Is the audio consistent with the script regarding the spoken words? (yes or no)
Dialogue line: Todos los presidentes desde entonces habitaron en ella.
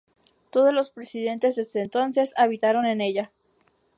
yes